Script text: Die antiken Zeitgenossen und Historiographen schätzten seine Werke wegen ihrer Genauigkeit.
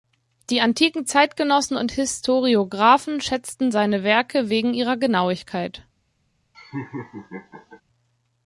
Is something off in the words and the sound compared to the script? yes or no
yes